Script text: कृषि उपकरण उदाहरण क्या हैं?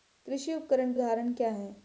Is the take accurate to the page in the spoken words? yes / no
yes